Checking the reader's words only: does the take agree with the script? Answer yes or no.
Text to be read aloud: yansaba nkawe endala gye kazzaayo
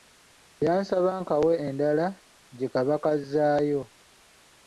no